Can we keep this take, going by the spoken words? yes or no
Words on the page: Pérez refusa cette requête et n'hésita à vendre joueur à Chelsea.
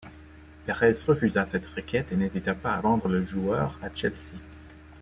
no